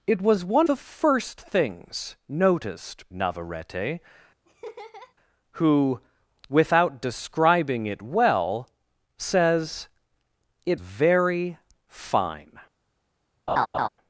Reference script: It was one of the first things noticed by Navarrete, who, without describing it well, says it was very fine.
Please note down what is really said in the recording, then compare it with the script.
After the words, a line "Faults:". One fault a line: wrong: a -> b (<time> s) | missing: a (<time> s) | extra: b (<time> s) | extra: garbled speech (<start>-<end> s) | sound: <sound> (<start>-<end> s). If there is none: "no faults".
It was one the first things noticed Navarrete, who, without describing it well, says it very fine.
Faults:
missing: of (0.7 s)
missing: by (3.1 s)
sound: laugh (4.5-5.1 s)
missing: was (10.8 s)
sound: laugh (13.5-13.9 s)